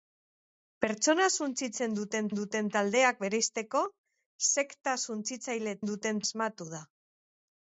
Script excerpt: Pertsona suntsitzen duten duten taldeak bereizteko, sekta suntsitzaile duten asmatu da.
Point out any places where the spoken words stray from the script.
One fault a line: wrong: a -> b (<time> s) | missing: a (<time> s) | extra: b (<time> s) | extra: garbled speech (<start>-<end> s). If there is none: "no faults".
no faults